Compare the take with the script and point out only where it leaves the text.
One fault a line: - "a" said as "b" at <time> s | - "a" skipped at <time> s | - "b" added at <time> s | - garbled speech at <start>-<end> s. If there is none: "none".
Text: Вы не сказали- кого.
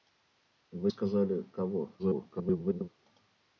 - "не" skipped at 0.9 s
- garbled speech at 2.0-2.9 s